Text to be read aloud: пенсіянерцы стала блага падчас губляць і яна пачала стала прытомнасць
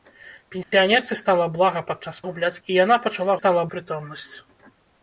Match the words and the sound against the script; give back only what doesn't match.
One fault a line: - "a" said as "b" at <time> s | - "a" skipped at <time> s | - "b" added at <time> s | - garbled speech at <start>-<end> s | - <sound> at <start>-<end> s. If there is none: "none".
- dropout at 0.6-0.7 s